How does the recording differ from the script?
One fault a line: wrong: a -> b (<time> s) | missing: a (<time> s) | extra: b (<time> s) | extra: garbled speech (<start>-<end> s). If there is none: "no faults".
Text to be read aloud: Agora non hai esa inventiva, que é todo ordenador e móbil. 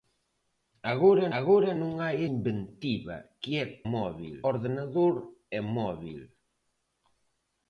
extra: agora (1.4 s)
missing: esa (2.2 s)
wrong: todo -> móbil (3.9 s)